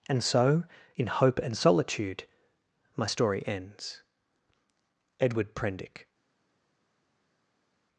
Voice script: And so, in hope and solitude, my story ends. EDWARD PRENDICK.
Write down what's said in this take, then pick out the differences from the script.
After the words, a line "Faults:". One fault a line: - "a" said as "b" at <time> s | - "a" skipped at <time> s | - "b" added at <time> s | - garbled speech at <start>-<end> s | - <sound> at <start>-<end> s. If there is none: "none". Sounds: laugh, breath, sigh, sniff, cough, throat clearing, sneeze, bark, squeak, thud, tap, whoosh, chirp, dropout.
And so, in hope and solitude, my story ends. EDWARD PRENDICK.
Faults:
none